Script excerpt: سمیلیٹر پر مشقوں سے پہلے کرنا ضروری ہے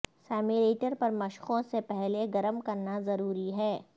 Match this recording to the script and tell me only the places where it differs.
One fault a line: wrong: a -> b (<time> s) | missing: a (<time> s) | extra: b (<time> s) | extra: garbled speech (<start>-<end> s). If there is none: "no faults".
extra: گرم (2.3 s)